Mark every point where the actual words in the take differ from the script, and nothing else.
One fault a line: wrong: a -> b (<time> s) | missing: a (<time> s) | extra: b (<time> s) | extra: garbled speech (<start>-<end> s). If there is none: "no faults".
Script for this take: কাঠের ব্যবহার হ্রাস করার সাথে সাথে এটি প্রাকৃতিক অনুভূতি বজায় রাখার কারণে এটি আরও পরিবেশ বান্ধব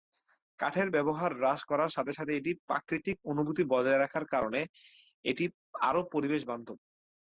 no faults